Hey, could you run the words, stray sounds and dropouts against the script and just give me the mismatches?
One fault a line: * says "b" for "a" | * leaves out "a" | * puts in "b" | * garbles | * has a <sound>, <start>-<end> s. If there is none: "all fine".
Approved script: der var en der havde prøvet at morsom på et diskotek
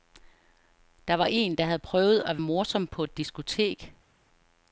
all fine